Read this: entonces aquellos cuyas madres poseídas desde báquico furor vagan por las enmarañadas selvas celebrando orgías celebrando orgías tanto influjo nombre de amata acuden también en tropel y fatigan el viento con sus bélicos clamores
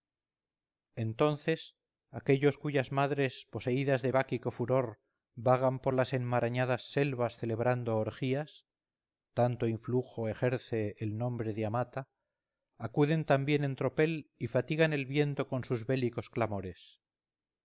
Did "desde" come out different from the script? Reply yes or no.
yes